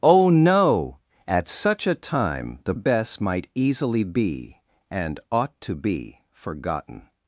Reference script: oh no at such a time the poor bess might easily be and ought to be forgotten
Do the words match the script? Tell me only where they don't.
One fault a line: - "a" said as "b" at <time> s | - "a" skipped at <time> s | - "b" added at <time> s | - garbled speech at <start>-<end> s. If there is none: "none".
- "poor" skipped at 2.7 s